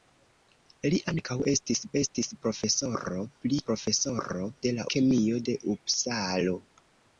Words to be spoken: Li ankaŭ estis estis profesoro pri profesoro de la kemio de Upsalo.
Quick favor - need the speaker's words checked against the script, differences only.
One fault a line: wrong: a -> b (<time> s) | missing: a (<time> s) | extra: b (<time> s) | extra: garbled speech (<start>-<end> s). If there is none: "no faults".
no faults